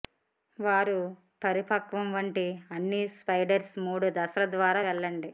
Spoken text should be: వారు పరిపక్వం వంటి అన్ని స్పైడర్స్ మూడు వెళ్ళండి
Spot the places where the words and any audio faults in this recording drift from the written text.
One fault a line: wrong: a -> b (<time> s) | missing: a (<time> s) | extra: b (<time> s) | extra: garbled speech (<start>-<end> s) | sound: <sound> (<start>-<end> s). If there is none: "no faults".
extra: దశల ద్వారా (4.2 s)